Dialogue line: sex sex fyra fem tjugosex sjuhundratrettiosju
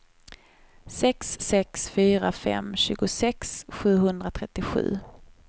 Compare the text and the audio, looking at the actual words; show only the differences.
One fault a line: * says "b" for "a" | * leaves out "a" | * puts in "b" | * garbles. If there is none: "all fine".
all fine